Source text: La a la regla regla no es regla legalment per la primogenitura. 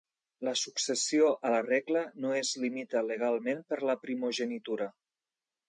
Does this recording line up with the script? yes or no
no